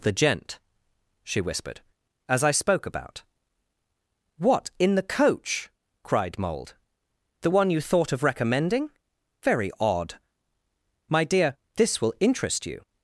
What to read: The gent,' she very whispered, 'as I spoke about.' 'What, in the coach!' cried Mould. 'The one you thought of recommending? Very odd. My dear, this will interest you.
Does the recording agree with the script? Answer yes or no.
no